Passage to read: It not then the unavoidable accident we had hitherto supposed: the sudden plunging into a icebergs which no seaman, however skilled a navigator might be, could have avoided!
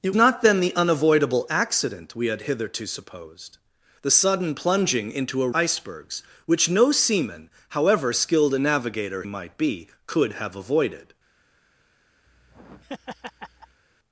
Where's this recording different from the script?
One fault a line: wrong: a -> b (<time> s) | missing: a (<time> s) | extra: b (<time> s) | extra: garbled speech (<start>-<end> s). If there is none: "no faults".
no faults